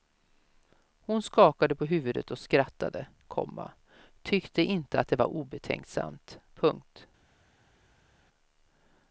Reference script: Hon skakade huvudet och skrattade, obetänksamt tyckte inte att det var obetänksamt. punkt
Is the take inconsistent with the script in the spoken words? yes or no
yes